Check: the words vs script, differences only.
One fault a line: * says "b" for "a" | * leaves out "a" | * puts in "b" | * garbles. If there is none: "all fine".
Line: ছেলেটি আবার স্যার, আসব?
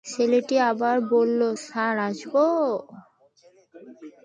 * puts in "বলল"